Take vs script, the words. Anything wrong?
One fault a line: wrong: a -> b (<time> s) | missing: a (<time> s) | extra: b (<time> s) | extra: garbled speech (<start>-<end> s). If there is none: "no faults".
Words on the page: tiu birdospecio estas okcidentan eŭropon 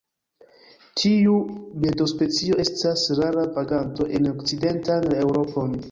extra: rara vaganto en (3.2 s)